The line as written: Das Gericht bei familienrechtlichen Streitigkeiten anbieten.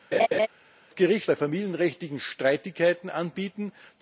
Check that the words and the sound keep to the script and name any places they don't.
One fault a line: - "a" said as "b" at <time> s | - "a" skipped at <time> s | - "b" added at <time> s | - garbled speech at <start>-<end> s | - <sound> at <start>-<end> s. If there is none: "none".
- laugh at 0.1-0.5 s